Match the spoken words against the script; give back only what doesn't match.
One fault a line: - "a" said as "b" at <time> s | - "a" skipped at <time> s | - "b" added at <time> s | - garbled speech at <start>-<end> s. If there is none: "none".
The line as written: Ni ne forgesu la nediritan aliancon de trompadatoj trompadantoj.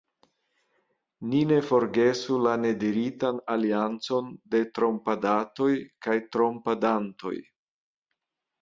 - "kaj" added at 6.1 s